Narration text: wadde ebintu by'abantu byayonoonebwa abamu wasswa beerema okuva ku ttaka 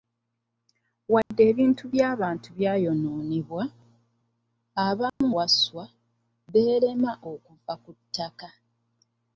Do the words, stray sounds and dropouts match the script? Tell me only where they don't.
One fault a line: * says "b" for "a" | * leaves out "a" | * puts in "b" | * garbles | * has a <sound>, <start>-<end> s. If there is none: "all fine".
* has a dropout, 1.2-1.3 s
* has a dropout, 5.1-5.2 s